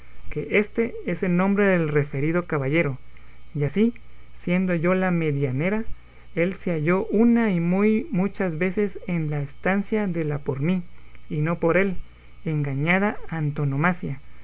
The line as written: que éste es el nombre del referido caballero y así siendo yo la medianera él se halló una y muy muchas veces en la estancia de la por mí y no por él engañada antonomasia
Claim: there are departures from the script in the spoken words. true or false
false